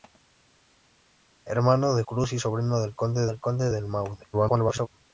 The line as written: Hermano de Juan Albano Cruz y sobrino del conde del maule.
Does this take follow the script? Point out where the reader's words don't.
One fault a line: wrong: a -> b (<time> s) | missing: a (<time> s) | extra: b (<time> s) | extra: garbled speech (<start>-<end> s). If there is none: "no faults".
missing: Juan Albano (2.0 s)
extra: conde del (3.4 s)
extra: garbled speech (4.3-4.9 s)